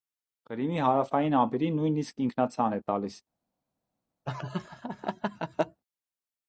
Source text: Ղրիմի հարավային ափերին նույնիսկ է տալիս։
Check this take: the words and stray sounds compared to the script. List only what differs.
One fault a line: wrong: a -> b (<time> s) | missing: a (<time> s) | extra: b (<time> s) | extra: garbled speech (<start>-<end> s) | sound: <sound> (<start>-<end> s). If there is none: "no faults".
extra: ինքնացան (2.3 s)
sound: laugh (4.3-5.8 s)